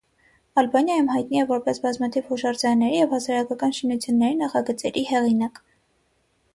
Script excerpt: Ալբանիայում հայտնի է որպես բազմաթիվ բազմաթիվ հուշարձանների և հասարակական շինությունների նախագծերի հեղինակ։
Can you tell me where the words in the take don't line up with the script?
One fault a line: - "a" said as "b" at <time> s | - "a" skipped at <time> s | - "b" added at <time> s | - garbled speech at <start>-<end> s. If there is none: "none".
- "բազմաթիվ" skipped at 2.3 s